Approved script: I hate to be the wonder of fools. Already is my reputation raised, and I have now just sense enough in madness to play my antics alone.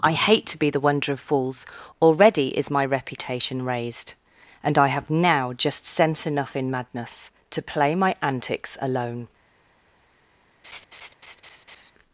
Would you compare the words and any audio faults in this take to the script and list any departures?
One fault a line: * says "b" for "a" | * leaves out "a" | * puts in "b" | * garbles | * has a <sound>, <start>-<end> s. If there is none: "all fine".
* has a laugh, 10.6-11.9 s